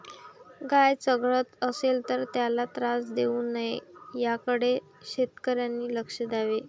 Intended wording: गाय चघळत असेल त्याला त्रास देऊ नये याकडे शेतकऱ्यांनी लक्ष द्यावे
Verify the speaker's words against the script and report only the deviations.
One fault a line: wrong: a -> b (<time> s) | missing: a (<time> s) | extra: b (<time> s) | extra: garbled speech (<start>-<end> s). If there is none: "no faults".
extra: तर (2.1 s)